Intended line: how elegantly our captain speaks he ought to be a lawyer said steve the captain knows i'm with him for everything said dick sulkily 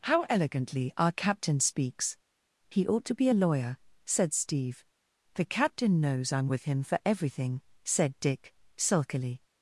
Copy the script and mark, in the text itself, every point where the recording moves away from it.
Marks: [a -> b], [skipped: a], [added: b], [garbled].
how elegantly our captain speaks he ought to be a lawyer said steve the captain knows i'm with him for everything said dick sulkily